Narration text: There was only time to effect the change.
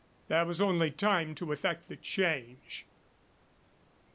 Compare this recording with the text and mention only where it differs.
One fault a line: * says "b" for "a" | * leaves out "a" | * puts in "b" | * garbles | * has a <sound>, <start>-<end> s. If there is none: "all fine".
all fine